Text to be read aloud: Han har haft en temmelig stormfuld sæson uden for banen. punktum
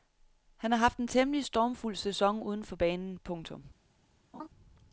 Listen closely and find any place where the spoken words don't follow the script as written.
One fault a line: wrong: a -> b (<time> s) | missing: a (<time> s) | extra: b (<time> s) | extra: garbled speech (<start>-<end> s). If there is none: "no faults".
no faults